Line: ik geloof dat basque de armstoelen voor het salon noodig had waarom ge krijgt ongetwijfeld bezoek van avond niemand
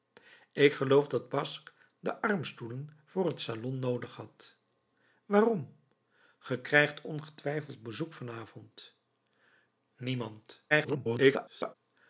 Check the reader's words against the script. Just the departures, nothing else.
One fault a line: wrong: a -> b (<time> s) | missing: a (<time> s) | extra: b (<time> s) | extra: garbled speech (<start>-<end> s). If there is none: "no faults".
extra: garbled speech (10.7-11.8 s)